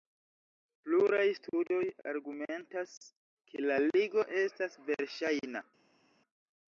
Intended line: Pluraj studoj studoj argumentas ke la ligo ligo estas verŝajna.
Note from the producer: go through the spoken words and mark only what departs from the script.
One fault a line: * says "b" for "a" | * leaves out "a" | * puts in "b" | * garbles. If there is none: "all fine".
* leaves out "studoj"
* leaves out "ligo"